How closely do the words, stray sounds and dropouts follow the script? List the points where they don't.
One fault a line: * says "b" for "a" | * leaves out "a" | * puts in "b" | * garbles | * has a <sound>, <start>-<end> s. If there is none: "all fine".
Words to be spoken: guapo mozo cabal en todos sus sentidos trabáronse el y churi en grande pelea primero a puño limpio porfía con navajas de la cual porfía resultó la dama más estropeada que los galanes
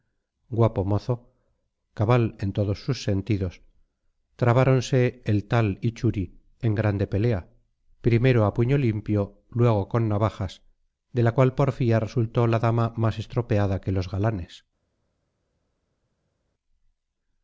* puts in "tal"
* says "luego" for "porfía"